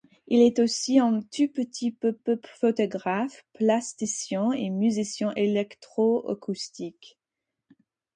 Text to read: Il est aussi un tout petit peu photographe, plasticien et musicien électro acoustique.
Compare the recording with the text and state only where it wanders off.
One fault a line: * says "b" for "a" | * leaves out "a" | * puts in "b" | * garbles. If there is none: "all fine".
* puts in "peu"